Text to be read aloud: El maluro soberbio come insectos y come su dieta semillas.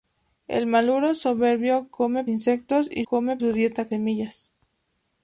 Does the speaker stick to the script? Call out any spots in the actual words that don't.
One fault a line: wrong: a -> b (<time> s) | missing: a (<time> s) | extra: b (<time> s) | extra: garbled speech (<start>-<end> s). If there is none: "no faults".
no faults